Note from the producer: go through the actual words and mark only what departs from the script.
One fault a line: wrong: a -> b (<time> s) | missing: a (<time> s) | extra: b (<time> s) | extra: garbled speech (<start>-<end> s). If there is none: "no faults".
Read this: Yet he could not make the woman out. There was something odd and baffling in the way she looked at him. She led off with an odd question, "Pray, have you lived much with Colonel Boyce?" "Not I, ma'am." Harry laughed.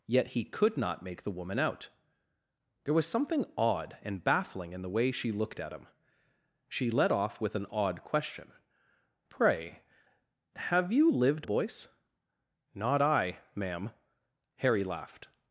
missing: much with Colonel (11.5 s)